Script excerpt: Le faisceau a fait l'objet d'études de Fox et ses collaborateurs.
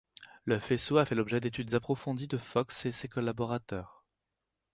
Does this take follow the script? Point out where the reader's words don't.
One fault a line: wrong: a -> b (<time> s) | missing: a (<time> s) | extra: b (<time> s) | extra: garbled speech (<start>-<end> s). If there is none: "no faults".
extra: approfondies (1.7 s)